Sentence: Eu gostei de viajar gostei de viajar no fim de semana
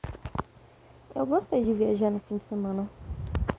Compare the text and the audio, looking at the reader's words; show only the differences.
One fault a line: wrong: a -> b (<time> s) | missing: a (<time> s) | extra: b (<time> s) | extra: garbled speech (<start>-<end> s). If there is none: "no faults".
missing: gostei de viajar (2.1 s)